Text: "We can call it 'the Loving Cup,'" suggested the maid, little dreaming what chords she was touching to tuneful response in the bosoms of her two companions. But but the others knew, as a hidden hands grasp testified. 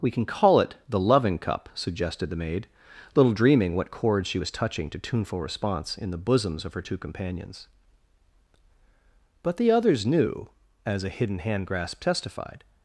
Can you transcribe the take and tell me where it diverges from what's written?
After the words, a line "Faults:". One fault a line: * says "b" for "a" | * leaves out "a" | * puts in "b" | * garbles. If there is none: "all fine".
"We can call it 'the Loving Cup,'" suggested the maid, little dreaming what chords she was touching to tuneful response in the bosoms of her two companions. But the others knew, as a hidden hand grasp testified.
Faults:
* leaves out "but"
* says "hand" for "hands"